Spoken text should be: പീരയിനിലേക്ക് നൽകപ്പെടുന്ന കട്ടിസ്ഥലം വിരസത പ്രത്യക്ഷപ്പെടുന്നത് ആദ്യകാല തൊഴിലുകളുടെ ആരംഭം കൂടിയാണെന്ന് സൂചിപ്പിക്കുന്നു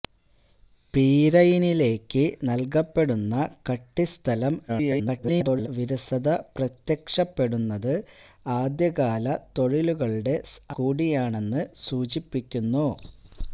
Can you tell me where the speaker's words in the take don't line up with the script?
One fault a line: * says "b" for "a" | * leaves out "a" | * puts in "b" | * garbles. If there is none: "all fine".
* garbles
* leaves out "ആരംഭം"